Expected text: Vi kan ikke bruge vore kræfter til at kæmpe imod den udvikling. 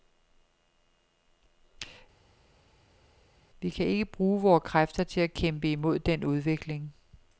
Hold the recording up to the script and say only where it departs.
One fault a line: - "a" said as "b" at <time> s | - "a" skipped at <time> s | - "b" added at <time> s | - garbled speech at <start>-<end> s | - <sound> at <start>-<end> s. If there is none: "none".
none